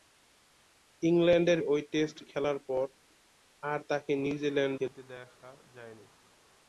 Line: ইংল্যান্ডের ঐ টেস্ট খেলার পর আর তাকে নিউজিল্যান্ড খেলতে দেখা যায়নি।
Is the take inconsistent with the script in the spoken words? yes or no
no